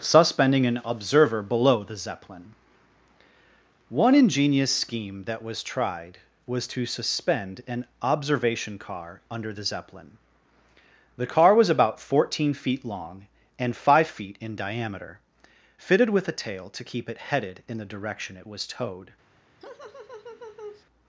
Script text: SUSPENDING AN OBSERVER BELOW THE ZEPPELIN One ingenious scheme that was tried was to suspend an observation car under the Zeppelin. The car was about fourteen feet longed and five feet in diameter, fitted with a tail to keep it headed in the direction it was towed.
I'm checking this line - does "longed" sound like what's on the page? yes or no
no